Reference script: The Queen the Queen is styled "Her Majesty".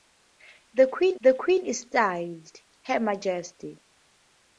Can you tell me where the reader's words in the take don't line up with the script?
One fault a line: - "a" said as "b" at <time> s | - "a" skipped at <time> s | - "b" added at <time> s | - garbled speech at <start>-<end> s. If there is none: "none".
none